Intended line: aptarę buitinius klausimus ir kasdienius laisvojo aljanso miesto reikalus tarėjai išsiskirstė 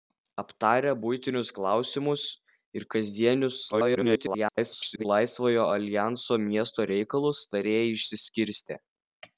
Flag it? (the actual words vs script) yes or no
yes